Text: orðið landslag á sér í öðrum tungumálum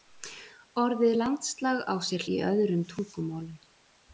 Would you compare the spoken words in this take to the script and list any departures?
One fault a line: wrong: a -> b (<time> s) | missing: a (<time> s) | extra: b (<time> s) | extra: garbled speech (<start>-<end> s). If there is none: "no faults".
no faults